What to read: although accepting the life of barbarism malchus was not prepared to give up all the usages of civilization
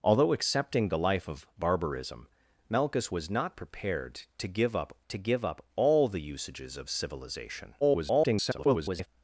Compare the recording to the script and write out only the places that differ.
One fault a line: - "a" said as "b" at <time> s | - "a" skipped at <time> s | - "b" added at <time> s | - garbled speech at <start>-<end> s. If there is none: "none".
- "to give up" added at 5.1 s
- garbled speech at 7.8-9.1 s